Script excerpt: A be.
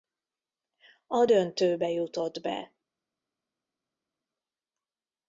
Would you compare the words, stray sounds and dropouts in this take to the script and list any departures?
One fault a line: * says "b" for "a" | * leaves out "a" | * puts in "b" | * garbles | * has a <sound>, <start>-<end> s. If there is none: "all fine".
* puts in "döntőbe jutott"